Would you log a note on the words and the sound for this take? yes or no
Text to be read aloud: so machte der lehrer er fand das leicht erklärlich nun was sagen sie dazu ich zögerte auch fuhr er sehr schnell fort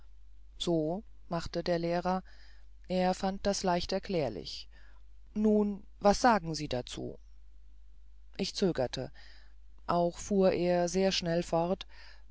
no